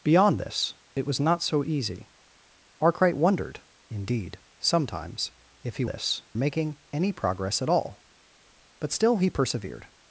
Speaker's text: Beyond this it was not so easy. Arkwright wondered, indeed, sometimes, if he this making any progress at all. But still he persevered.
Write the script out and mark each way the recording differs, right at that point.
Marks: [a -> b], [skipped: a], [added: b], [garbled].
Beyond this it was not so easy. Arkwright wondered, indeed, sometimes, if he this making any progress at all. But still he persevered.